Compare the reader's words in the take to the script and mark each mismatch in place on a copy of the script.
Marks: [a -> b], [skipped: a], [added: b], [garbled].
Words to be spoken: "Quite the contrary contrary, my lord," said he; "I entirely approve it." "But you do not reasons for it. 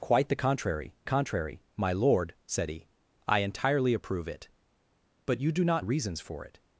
"Quite the contrary contrary, my lord," said he; "I entirely approve it." "But you do not reasons for it.